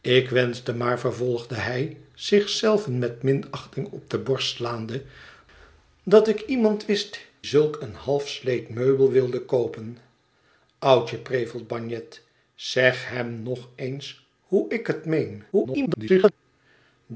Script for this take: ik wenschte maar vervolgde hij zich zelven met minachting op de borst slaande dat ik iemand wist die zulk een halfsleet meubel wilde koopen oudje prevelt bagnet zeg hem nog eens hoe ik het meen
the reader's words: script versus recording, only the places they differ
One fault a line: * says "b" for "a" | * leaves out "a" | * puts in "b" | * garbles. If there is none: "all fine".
* leaves out "die"
* garbles